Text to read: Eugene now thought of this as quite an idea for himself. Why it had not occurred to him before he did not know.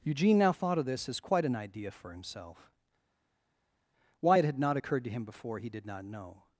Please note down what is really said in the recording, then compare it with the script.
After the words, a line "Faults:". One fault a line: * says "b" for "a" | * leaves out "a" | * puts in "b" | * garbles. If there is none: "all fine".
Eugene now thought of this as quite an idea for himself. Why it had not occurred to him before he did not know.
Faults:
all fine